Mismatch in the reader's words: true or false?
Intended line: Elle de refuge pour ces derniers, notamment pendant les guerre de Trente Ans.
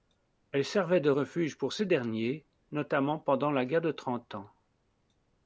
true